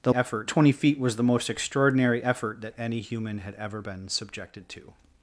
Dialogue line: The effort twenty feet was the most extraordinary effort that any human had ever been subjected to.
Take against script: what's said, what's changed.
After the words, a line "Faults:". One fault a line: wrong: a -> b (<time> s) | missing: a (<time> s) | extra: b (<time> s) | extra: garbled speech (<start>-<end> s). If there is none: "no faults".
The effort twenty feet was the most extraordinary effort that any human had ever been subjected to.
Faults:
no faults